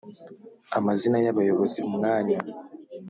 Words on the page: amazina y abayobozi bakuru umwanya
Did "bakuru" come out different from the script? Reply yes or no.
yes